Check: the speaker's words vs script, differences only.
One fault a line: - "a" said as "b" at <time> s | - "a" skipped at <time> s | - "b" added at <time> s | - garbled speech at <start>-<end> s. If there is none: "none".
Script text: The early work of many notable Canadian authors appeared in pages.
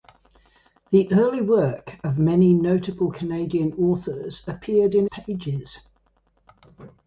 none